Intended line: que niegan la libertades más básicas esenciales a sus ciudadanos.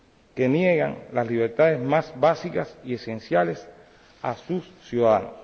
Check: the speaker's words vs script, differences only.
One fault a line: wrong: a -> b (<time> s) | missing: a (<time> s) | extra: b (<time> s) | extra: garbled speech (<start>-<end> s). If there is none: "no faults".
wrong: la -> las (1.1 s)
extra: y (2.8 s)